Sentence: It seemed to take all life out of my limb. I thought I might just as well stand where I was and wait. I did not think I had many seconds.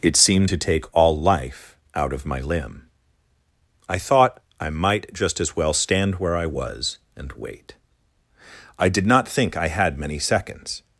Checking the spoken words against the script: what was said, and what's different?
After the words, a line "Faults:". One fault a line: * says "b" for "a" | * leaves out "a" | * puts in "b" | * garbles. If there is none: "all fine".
It seemed to take all life out of my limb. I thought I might just as well stand where I was and wait. I did not think I had many seconds.
Faults:
all fine